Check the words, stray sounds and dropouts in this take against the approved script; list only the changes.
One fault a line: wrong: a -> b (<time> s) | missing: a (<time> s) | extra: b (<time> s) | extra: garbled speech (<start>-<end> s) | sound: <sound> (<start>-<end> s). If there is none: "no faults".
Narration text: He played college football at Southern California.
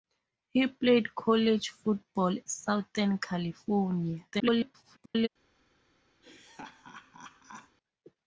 missing: at (2.4 s)
extra: garbled speech (4.3-5.3 s)
sound: laugh (6.2-7.8 s)